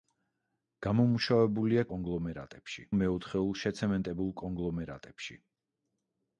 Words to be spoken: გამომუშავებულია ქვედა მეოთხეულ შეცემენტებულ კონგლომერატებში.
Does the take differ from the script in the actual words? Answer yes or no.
yes